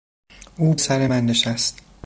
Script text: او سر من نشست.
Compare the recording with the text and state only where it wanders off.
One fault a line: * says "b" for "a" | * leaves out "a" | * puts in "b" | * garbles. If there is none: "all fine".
all fine